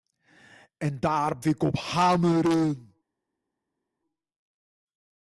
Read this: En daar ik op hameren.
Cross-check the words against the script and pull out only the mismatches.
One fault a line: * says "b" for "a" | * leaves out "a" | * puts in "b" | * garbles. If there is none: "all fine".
all fine